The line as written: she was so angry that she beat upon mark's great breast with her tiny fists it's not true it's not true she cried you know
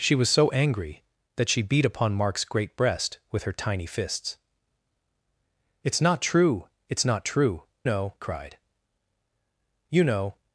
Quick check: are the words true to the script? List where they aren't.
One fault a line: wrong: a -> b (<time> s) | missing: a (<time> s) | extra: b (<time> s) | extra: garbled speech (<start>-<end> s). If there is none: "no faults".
wrong: she -> know (7.8 s)